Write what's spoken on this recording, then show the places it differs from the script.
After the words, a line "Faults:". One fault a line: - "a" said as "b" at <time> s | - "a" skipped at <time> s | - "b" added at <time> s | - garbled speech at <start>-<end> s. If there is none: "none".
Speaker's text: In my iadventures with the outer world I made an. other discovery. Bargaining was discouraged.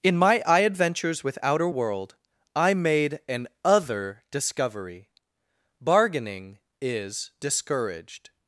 In my iadventures with outer world I made an. other discovery. Bargaining is discouraged.
Faults:
- "the" skipped at 1.4 s
- "was" said as "is" at 6.8 s